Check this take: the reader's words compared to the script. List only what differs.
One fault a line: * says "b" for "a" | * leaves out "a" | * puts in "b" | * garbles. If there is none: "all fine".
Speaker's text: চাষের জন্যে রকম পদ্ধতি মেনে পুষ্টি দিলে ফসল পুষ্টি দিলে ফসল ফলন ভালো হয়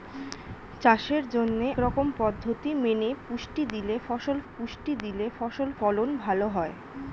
all fine